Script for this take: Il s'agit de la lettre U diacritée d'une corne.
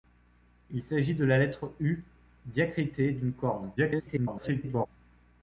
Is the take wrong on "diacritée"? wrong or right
right